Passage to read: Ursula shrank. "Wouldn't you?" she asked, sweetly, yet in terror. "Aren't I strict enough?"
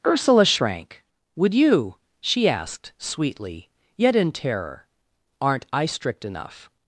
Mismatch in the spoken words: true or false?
true